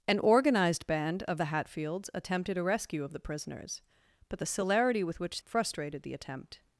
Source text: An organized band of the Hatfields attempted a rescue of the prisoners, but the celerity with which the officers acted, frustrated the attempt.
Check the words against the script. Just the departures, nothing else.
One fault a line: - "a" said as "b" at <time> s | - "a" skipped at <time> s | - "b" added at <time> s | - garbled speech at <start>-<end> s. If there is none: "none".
- "the officers acted" skipped at 5.4 s